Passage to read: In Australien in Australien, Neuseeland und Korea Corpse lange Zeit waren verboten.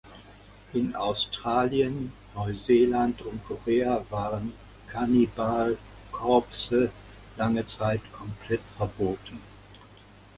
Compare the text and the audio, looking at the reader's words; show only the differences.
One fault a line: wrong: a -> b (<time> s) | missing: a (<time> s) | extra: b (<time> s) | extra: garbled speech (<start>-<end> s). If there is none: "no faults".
missing: in Australien (2.1 s)
extra: waren Cannibal (4.1 s)
wrong: waren -> komplett (8.1 s)